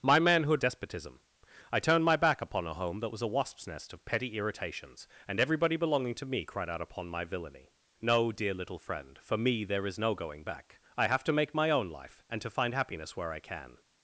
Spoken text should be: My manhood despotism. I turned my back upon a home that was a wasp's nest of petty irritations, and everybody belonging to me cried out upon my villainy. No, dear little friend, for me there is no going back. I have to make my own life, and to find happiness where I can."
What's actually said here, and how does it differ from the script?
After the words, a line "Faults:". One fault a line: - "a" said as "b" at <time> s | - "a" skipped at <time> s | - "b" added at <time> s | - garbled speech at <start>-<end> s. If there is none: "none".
My manhood despotism. I turned my back upon a home that was a wasp's nest of petty irritations, and everybody belonging to me cried out upon my villainy. No, dear little friend, for me there is no going back. I have to make my own life, and to find happiness where I can."
Faults:
none